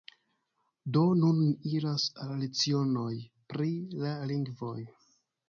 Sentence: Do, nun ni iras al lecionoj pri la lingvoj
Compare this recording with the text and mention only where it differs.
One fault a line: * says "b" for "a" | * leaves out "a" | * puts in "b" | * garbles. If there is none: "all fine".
all fine